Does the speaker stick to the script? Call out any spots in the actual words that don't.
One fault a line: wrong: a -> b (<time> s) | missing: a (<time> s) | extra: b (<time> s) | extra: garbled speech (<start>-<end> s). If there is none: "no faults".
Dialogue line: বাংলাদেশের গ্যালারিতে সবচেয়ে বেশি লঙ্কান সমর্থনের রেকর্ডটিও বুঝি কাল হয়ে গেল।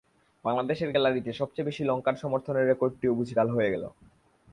no faults